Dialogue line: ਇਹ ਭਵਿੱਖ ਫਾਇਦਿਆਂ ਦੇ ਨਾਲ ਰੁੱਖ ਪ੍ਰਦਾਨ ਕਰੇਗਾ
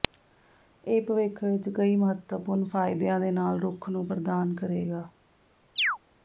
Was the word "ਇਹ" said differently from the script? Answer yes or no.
no